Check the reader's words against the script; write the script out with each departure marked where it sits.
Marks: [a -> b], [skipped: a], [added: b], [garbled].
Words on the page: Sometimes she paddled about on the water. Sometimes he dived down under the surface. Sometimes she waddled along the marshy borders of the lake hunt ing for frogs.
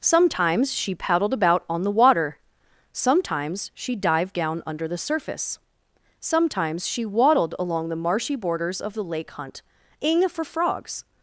Sometimes she paddled about on the water. Sometimes [he -> she] dived down under the surface. Sometimes she waddled along the marshy borders of the lake hunt ing for frogs.